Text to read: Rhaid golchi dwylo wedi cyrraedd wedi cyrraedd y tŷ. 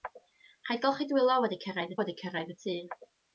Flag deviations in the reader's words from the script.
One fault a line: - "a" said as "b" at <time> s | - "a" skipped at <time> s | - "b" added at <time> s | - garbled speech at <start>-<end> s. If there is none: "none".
none